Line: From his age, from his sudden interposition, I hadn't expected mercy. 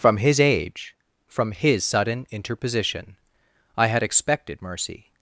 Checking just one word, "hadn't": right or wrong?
wrong